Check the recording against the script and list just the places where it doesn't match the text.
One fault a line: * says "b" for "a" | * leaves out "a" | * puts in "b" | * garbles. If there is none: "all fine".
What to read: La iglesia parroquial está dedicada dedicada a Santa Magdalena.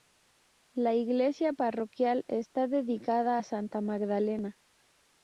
* leaves out "dedicada"